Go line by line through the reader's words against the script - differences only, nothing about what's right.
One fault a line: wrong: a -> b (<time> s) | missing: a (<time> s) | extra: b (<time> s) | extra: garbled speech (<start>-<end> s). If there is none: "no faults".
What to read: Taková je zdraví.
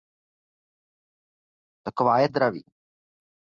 no faults